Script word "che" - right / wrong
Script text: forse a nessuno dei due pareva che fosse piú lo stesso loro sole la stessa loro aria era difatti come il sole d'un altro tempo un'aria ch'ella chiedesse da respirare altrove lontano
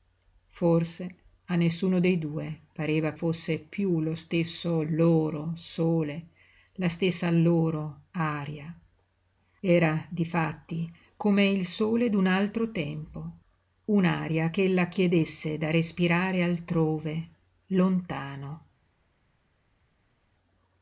wrong